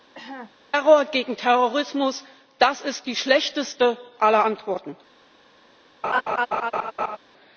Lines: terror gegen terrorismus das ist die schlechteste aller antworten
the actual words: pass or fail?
pass